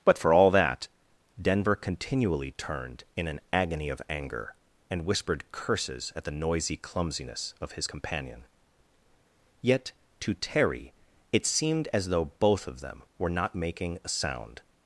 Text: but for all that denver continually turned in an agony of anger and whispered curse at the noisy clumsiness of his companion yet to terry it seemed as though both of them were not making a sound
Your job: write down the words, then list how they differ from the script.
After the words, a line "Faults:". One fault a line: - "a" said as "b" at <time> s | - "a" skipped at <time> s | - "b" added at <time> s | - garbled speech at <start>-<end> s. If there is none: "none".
but for all that denver continually turned in an agony of anger and whispered curses at the noisy clumsiness of his companion yet to terry it seemed as though both of them were not making a sound
Faults:
- "curse" said as "curses" at 5.5 s